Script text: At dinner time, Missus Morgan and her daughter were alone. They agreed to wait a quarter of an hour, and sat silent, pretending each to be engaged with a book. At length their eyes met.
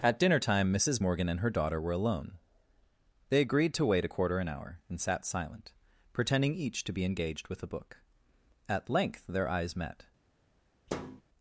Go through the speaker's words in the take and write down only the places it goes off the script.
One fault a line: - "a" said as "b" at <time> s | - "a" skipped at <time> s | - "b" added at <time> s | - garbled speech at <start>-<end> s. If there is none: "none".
- "of" skipped at 4.4 s